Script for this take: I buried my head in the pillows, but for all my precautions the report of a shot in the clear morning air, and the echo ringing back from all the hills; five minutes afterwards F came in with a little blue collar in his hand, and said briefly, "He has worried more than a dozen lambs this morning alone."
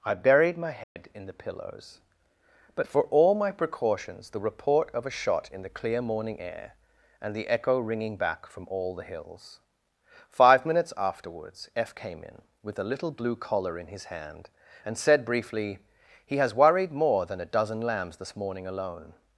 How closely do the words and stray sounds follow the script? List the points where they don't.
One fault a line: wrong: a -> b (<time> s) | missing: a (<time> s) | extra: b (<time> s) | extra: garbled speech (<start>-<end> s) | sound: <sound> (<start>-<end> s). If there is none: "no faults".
sound: dropout (0.8-1.0 s)